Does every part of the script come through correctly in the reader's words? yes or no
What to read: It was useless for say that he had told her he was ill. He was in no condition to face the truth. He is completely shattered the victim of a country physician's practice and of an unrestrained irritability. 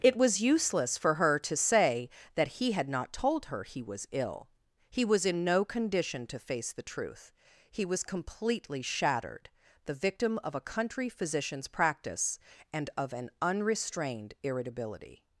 no